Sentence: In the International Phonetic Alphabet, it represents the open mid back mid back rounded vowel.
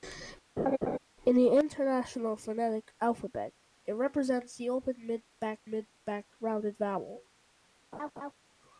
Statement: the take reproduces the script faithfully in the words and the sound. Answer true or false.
false